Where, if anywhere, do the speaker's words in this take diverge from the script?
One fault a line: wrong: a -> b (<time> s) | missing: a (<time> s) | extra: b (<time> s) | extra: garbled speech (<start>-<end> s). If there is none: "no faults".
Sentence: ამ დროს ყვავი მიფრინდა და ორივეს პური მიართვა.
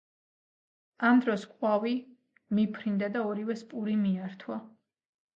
no faults